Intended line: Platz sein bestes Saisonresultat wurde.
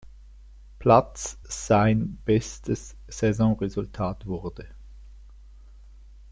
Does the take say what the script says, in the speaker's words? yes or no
yes